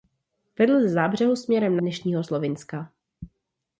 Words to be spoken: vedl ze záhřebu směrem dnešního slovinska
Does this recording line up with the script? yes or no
yes